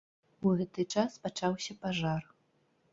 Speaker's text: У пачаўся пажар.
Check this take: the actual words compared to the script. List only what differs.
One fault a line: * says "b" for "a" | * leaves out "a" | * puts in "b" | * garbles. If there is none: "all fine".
* puts in "гэты час"